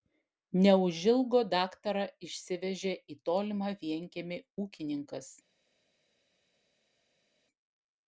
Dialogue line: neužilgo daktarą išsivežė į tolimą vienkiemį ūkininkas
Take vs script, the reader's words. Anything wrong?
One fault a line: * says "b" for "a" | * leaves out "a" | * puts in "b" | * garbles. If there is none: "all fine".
all fine